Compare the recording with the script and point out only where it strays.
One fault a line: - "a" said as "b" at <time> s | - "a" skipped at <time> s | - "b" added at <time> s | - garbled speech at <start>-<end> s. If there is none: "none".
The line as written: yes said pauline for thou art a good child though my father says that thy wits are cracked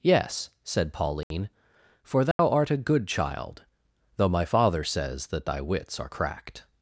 none